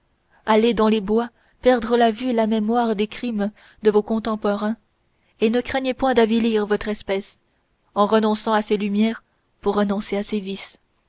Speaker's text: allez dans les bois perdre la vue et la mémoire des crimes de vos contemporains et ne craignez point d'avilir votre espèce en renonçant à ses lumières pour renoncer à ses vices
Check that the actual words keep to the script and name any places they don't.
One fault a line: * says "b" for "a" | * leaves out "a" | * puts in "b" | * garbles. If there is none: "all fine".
all fine